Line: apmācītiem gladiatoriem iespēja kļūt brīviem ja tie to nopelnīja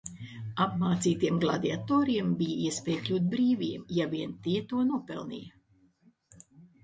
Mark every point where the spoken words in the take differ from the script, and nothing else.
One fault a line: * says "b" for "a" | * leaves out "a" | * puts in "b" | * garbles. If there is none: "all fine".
* puts in "bija"
* puts in "vien"